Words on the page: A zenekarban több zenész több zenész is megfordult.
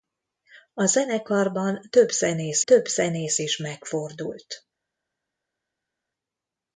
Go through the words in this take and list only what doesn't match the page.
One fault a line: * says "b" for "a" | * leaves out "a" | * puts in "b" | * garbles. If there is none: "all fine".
all fine